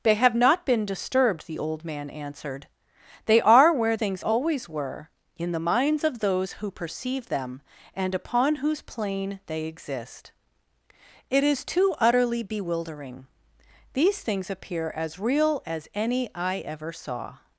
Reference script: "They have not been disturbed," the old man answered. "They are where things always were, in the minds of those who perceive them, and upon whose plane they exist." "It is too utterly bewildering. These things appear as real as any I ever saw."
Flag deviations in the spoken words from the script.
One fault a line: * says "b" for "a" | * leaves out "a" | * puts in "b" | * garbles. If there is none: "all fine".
all fine